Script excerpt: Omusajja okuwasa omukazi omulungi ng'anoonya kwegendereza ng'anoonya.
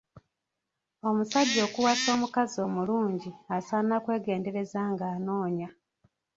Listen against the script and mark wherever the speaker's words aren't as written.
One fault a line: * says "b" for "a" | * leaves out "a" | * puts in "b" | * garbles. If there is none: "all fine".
* says "asaana" for "ng'anoonya"